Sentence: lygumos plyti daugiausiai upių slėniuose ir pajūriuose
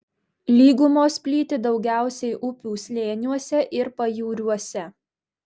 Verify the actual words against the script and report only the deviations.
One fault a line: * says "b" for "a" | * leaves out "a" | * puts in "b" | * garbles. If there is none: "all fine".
all fine